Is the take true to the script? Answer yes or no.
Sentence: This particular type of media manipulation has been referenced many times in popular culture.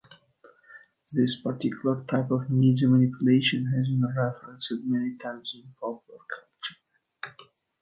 yes